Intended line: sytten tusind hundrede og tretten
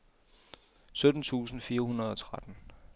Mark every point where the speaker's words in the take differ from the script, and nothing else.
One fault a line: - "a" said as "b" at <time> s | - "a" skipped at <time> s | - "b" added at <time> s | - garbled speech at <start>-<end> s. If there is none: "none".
- "fire" added at 1.6 s